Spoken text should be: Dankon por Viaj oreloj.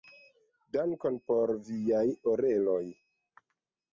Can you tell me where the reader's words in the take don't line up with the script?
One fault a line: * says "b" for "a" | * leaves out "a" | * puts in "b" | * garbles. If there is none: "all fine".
all fine